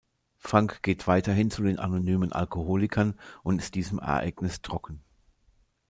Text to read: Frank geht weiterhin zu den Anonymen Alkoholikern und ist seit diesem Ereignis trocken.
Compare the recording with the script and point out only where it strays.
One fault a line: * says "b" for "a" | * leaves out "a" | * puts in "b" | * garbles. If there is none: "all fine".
* leaves out "seit"